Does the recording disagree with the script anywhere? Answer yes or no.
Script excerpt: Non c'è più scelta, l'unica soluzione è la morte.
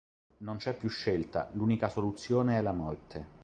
no